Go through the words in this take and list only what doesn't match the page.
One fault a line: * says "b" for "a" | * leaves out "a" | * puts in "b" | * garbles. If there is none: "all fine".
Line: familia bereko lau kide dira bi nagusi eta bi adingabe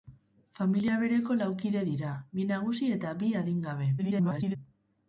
* garbles